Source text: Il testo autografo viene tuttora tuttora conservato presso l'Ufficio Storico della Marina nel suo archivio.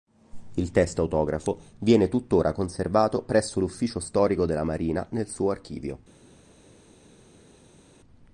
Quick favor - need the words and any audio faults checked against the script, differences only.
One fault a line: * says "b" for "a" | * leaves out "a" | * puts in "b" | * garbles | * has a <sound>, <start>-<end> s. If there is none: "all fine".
* leaves out "tuttora"